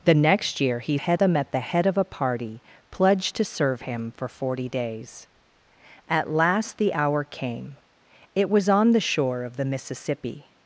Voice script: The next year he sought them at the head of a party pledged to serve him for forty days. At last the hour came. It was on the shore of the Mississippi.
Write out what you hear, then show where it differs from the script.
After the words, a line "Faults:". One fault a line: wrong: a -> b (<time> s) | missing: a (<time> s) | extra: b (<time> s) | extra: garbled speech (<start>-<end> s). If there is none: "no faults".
The next year he head them at the head of a party pledged to serve him for forty days. At last the hour came. It was on the shore of the Mississippi.
Faults:
wrong: sought -> head (0.9 s)